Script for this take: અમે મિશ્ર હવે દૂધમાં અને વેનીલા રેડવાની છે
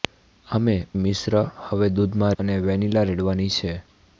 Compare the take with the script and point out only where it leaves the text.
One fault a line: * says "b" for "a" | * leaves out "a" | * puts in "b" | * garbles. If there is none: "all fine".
all fine